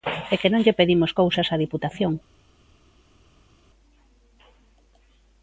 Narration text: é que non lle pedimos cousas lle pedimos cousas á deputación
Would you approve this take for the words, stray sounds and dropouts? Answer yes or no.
no